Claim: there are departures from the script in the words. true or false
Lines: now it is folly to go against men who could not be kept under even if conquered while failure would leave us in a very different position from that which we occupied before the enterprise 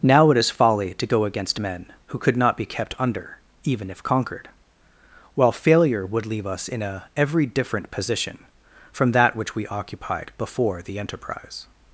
true